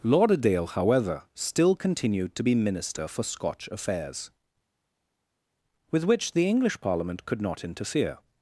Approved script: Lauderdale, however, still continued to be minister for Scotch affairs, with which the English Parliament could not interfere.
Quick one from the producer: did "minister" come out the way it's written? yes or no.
yes